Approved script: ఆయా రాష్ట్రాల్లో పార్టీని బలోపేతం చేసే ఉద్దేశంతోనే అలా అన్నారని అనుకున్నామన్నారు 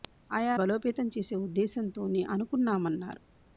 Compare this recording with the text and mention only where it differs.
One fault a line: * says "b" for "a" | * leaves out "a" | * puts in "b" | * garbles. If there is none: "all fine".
* leaves out "రాష్ట్రాల్లో పార్టీని"
* leaves out "అలా అన్నారని"